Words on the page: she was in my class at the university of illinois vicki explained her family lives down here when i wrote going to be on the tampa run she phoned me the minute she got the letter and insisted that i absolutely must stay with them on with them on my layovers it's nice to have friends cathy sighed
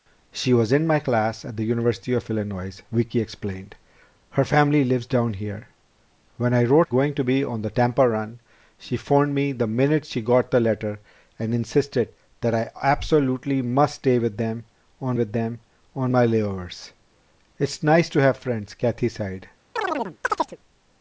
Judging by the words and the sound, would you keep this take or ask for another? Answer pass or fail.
fail